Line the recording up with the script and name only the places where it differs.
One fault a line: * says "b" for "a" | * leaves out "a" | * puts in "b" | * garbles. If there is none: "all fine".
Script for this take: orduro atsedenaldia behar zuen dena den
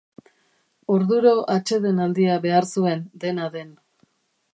all fine